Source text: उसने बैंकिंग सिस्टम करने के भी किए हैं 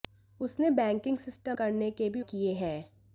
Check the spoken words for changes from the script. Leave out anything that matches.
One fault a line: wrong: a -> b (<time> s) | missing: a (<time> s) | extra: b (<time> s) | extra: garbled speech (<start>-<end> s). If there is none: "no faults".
no faults